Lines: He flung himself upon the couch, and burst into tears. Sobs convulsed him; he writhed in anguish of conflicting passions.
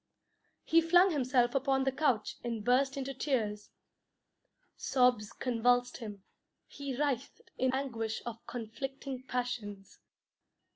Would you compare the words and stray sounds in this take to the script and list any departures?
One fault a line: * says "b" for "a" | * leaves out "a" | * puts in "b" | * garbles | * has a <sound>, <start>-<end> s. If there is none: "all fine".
all fine